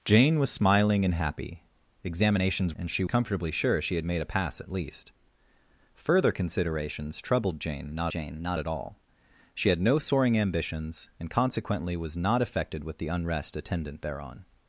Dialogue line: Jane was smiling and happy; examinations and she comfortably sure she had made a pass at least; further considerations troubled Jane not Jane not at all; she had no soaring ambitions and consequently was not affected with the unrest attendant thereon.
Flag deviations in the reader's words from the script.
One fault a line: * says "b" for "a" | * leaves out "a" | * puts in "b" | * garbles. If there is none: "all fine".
all fine